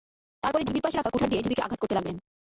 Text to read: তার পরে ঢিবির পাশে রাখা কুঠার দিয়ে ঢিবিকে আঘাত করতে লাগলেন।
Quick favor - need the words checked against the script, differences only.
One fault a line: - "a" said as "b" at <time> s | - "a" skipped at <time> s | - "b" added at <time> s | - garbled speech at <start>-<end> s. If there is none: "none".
none